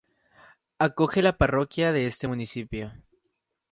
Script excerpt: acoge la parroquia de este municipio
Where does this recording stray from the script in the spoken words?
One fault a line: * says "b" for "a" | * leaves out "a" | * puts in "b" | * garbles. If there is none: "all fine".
all fine